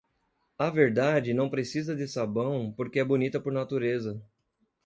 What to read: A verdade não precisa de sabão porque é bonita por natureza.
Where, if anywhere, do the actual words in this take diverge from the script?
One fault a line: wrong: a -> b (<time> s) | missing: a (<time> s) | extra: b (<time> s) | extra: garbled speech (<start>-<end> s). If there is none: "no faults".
no faults